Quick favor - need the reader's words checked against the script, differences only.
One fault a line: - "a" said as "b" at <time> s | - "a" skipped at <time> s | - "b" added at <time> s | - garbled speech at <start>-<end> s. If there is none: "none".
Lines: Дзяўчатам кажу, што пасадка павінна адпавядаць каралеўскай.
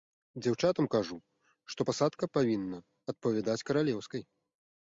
none